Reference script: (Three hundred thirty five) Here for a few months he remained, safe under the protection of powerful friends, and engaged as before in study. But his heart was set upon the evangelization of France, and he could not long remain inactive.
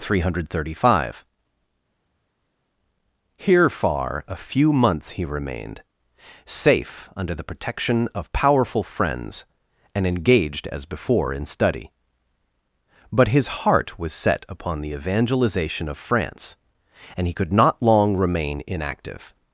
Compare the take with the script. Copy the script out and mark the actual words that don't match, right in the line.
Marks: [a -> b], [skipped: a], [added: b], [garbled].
(Three hundred thirty five) Here [for -> far] a few months he remained, safe under the protection of powerful friends, and engaged as before in study. But his heart was set upon the evangelization of France, and he could not long remain inactive.